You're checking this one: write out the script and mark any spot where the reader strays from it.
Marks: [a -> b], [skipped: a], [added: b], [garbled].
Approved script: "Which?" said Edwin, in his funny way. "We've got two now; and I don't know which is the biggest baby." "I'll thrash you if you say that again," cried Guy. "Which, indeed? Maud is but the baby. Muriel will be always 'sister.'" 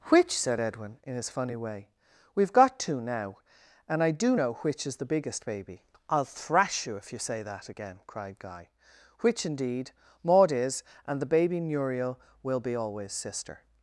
"Which?" said Edwin, in his funny way. "We've got two now; and I [don't -> do] know which is the biggest baby." "I'll thrash you if you say that again," cried Guy. "Which, indeed? Maud is [but -> and] the baby. Muriel will be always 'sister.'"